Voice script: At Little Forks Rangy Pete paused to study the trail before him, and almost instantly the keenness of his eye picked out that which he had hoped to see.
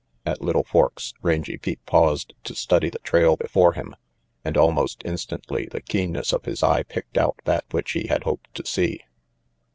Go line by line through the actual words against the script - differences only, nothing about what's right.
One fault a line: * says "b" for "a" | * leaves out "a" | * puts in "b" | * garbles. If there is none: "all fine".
all fine